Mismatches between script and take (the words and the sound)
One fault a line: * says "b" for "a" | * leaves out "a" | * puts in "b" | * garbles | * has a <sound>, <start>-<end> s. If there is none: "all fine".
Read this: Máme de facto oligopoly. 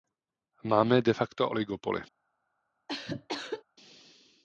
* has a cough, 2.9-3.6 s